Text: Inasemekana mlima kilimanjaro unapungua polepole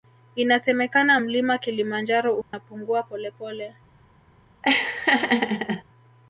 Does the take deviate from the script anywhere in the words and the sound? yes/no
yes